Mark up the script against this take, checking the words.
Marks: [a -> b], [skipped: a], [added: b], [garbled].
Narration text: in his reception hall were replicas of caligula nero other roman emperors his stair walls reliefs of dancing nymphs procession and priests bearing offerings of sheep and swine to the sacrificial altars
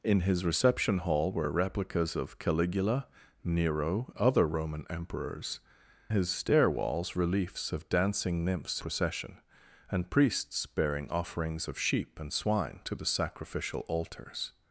in his reception hall were replicas of caligula nero other roman emperors his stair walls reliefs of dancing nymphs procession and priests bearing offerings of sheep and swine to the sacrificial altars